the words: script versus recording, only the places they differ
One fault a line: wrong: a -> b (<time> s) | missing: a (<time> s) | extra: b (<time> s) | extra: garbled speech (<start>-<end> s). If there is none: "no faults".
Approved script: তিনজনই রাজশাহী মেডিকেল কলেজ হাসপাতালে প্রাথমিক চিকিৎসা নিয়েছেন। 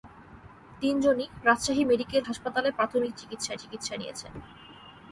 missing: কলেজ (2.2 s)
extra: চিকিৎসা (3.6 s)